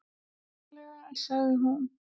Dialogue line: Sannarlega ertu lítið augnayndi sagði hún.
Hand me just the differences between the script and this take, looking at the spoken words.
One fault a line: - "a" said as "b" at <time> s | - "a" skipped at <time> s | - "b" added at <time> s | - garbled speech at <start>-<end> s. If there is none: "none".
- "ertu lítið augnayndi" skipped at 1.1 s